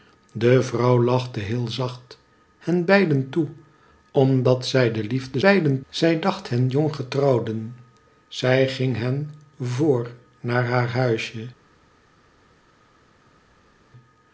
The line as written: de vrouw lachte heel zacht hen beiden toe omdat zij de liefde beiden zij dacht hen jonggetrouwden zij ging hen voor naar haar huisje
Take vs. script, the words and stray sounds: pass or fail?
pass